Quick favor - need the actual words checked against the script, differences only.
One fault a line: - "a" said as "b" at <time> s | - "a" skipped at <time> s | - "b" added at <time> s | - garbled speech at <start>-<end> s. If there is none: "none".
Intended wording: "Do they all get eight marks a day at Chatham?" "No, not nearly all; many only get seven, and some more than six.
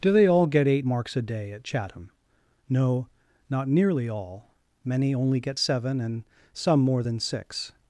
none